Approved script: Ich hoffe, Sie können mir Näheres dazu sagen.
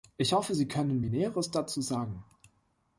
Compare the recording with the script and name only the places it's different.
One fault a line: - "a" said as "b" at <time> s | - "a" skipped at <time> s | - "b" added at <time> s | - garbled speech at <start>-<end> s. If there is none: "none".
none